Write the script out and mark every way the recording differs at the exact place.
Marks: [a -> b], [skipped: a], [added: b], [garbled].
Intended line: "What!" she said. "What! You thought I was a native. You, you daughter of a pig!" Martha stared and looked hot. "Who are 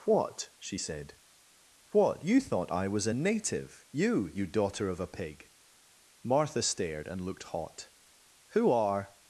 "What!" she said. "What! You thought I was a native. You, you daughter of a pig!" Martha stared and looked hot. "Who are